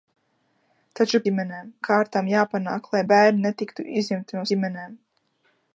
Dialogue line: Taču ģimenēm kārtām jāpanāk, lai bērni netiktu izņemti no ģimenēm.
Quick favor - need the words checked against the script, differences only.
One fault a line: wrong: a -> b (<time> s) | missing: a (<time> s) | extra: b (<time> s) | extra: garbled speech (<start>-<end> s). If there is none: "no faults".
no faults